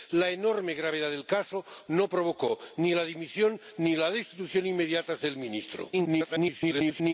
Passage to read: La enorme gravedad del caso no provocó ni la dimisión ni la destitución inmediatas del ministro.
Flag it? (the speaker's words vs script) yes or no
yes